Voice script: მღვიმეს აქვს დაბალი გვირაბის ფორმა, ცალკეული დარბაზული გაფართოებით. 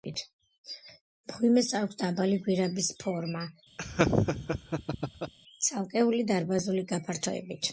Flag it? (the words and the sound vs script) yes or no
yes